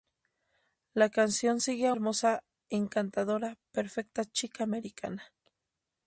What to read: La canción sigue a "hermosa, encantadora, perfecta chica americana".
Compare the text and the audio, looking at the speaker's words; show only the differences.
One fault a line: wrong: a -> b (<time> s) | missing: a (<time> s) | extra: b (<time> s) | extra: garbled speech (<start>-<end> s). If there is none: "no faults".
no faults